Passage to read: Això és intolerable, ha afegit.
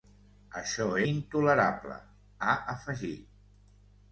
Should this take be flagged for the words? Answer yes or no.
yes